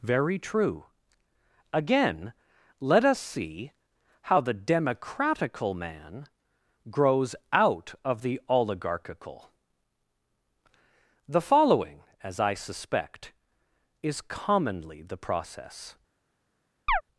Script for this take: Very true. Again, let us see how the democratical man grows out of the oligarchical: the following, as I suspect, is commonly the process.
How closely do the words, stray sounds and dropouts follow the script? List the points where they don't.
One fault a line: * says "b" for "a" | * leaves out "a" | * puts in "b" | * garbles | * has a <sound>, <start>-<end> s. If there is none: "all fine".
* has a chirp, 16.9-17.0 s